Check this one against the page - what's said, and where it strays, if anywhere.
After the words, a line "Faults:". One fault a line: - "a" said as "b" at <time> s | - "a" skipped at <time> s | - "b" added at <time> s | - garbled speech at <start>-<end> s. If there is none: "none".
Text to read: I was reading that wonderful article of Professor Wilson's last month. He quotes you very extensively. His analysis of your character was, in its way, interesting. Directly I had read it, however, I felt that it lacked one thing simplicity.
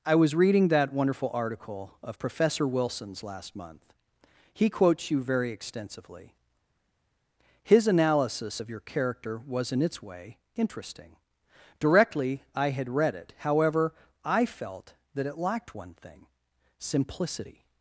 I was reading that wonderful article of Professor Wilson's last month. He quotes you very extensively. His analysis of your character was, in its way, interesting. Directly I had read it, however, I felt that it lacked one thing simplicity.
Faults:
none